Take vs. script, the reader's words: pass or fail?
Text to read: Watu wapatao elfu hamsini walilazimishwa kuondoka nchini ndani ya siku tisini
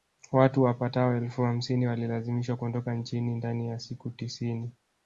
pass